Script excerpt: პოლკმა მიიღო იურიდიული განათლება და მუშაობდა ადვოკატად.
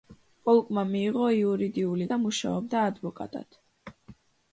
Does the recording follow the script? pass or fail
fail